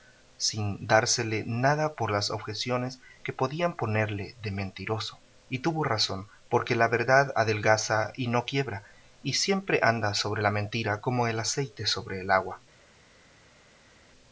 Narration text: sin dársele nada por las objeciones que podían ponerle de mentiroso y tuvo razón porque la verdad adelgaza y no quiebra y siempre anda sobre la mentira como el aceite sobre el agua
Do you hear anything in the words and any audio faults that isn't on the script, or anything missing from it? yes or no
no